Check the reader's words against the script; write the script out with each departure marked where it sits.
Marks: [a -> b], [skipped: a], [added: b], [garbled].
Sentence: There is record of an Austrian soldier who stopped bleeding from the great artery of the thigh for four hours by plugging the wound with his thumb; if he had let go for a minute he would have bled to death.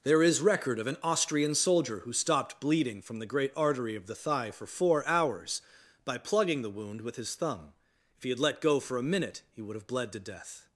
There is record of an Austrian soldier who stopped bleeding from the great artery of the thigh for four hours by plugging the wound with his thumb; if he had let go for a minute he would have bled to death.